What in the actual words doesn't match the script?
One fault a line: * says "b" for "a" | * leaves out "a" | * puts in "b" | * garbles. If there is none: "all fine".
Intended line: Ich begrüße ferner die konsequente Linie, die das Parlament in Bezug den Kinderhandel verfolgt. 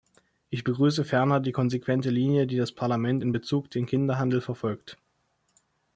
all fine